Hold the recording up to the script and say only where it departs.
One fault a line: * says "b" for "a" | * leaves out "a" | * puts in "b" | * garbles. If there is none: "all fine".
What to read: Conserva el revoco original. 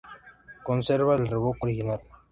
all fine